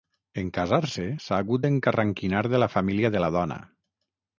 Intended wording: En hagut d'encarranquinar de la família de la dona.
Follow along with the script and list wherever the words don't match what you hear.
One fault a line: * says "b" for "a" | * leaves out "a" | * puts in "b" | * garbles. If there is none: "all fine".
* puts in "casar se s'ha"